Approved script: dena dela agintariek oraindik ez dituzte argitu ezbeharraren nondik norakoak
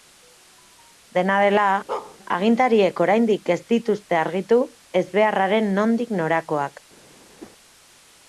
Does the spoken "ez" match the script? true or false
true